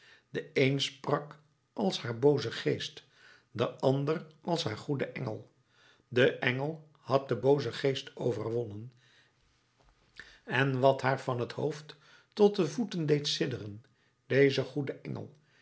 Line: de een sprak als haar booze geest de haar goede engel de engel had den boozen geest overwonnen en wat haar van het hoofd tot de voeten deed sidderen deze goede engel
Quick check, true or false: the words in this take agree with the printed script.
false